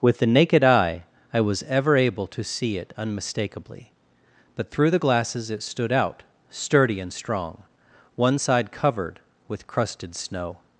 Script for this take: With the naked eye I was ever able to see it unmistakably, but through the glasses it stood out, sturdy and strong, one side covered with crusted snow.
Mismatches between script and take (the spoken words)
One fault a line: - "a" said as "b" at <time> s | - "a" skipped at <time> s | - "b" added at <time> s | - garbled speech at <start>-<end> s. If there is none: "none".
none